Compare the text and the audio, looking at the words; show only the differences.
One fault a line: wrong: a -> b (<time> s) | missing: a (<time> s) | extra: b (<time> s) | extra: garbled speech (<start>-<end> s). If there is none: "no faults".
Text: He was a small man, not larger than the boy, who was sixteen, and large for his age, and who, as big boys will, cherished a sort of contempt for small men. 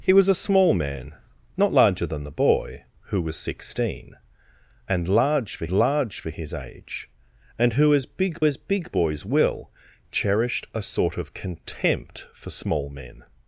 extra: large for (5.7 s)
extra: as big (8.4 s)